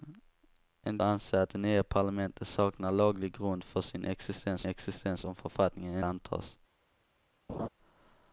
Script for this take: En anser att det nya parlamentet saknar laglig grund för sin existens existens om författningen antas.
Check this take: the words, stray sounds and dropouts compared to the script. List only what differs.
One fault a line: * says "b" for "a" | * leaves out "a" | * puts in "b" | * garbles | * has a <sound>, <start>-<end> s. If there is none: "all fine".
* has a laugh, 7.5-7.7 s